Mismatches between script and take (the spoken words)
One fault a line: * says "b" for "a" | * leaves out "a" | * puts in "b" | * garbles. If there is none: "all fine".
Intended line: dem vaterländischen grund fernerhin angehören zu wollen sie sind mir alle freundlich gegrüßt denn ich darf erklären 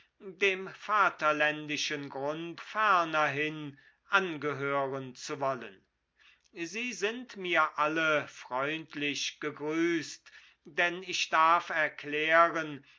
all fine